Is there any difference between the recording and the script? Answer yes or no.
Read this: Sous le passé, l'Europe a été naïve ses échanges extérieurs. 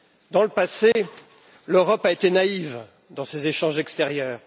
yes